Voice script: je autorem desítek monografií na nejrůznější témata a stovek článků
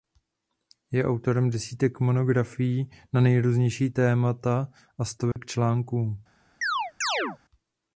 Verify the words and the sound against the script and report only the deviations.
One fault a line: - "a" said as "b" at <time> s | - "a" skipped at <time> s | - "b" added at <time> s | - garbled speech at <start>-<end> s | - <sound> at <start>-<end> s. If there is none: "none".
- dropout at 5.3-5.4 s
- chirp at 6.6-7.4 s